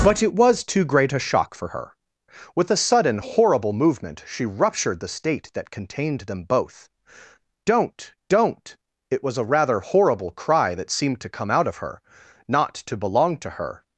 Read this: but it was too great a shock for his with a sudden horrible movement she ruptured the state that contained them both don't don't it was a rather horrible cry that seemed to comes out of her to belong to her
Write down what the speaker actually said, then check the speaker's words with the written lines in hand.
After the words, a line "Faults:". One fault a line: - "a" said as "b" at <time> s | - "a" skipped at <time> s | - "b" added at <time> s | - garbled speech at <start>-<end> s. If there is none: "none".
but it was too great a shock for her with a sudden horrible movement she ruptured the state that contained them both don't don't it was a rather horrible cry that seemed to come out of her not to belong to her
Faults:
- "his" said as "her" at 1.7 s
- "comes" said as "come" at 11.3 s
- "not" added at 12.5 s